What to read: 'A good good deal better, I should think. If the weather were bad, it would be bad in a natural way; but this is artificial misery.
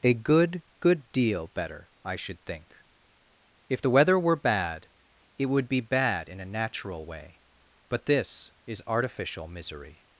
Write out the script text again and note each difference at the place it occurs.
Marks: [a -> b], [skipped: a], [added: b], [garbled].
'A good good deal better, I should think. If the weather were bad, it would be bad in a natural way; but this is artificial misery.